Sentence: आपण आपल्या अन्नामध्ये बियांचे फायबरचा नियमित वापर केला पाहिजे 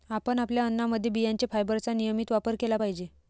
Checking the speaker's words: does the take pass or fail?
pass